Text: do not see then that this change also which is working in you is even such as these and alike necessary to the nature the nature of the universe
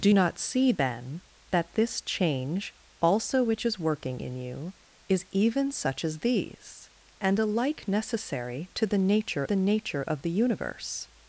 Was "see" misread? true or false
false